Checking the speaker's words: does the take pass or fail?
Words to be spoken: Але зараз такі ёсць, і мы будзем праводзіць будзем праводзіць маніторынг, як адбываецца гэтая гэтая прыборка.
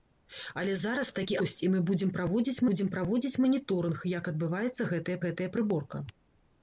pass